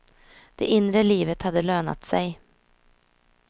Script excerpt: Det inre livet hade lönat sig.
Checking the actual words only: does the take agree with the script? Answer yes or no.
yes